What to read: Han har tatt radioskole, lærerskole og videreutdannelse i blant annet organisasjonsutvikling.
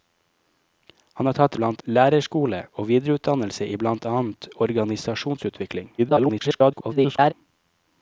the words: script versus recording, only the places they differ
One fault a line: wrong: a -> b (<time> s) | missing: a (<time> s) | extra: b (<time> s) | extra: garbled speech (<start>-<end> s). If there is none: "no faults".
wrong: radioskole -> blant (1.5 s)
extra: garbled speech (6.0-7.3 s)